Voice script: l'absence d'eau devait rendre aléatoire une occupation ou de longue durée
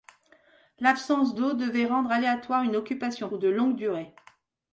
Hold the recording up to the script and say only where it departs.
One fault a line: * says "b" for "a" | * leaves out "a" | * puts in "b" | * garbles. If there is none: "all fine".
all fine